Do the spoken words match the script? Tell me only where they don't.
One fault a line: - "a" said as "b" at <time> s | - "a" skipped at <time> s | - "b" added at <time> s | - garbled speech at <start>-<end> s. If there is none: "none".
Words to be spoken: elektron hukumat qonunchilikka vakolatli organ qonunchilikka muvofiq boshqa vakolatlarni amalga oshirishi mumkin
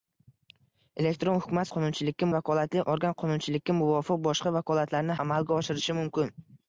none